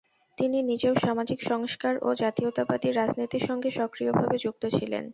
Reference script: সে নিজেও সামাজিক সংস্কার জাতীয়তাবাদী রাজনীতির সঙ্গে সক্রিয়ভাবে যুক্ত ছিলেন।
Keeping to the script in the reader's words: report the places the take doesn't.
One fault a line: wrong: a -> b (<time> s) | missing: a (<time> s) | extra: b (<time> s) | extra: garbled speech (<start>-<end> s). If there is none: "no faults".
wrong: সে -> তিনি (0.4 s)
extra: ও (2.0 s)